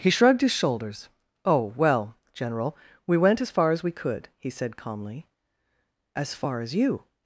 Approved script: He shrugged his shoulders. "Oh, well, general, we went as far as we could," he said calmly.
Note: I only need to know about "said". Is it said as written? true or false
true